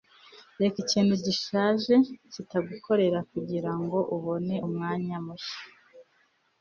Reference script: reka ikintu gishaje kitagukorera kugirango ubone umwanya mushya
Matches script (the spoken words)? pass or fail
pass